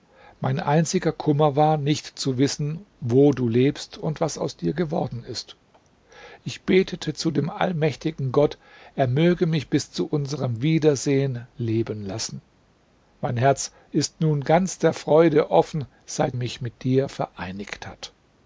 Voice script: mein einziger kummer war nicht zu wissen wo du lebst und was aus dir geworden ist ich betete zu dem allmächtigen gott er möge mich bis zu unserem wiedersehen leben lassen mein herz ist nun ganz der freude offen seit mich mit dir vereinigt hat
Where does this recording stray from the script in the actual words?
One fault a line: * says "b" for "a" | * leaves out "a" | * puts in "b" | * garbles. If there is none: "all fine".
all fine